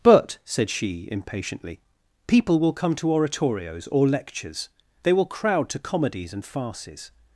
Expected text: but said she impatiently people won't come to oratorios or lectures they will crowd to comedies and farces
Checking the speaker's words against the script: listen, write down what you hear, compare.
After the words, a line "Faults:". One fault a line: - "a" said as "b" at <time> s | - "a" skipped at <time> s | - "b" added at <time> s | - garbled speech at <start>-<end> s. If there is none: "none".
but said she impatiently people will come to oratorios or lectures they will crowd to comedies and farces
Faults:
- "won't" said as "will" at 2.6 s